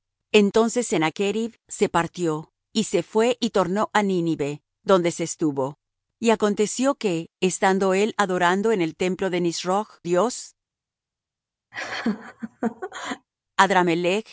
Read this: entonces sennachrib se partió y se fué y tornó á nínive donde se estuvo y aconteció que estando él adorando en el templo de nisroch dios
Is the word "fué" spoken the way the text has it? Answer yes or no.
yes